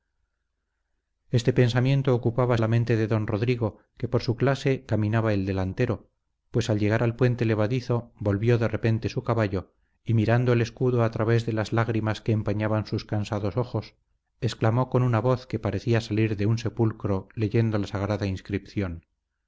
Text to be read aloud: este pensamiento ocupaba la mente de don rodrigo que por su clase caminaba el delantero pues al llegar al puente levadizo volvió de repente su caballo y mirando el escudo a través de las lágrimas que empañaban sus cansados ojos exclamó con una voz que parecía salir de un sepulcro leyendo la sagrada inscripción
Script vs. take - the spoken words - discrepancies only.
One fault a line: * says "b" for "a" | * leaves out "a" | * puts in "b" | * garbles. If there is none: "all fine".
all fine